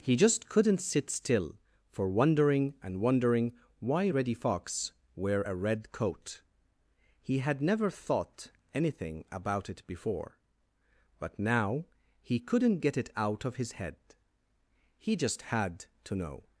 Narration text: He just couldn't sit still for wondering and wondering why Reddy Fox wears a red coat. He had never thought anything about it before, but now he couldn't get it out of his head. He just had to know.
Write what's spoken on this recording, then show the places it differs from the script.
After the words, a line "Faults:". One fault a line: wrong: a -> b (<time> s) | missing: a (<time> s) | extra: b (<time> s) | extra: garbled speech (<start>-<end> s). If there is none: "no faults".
He just couldn't sit still for wondering and wondering why Reddy Fox wear a red coat. He had never thought anything about it before, but now he couldn't get it out of his head. He just had to know.
Faults:
wrong: wears -> wear (5.2 s)